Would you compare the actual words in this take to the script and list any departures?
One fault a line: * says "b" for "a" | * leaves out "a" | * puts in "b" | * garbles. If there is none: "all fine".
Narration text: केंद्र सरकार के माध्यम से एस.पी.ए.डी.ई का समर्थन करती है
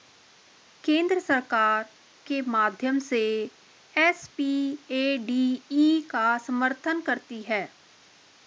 all fine